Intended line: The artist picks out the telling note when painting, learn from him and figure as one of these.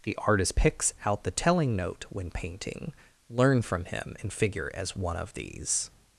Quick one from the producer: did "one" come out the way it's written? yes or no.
yes